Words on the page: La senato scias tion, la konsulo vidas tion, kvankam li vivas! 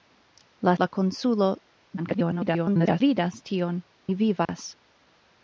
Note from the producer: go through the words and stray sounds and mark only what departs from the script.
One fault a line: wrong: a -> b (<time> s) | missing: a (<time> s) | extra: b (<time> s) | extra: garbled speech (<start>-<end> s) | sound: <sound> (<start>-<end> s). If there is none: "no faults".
missing: senato scias tion (0.7 s)
extra: garbled speech (2.0-3.0 s)
missing: kvankam (3.8 s)
sound: dropout (4.5-4.5 s)